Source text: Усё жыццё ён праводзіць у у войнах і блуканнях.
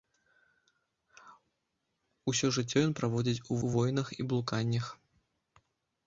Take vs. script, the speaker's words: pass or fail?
pass